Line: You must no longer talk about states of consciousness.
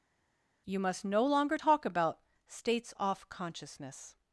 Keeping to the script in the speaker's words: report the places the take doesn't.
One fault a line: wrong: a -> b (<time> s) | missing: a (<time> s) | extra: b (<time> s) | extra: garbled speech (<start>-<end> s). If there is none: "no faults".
wrong: of -> off (3.0 s)